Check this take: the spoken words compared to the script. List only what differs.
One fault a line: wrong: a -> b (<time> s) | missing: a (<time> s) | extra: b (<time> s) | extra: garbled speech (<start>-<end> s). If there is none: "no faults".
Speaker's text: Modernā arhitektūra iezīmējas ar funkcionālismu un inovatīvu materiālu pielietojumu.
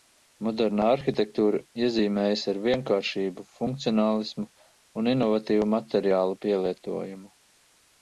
extra: vienkāršību (2.6 s)